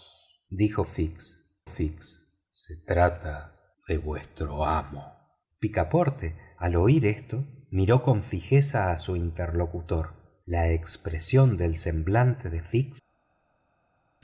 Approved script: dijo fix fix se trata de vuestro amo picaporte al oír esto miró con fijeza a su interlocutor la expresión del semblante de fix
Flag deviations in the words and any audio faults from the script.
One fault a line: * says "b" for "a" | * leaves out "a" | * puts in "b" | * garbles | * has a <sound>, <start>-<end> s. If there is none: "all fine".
all fine